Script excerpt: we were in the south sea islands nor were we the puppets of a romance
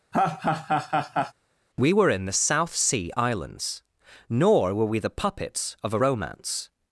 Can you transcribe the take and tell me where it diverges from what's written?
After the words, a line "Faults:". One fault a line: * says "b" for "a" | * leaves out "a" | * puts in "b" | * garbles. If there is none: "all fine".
we were in the south sea islands nor were we the puppets of a romance
Faults:
all fine